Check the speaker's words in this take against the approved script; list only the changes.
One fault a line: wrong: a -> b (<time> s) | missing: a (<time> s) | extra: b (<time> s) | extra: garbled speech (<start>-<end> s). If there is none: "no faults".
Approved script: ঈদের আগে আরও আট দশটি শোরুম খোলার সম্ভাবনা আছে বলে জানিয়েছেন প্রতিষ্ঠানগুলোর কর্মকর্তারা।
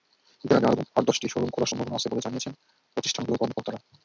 no faults